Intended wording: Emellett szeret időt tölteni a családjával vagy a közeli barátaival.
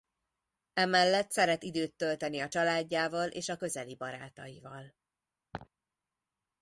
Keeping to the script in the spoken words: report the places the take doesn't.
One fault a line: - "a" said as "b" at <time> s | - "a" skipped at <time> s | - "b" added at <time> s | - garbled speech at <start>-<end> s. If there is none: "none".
- "vagy" said as "és" at 3.3 s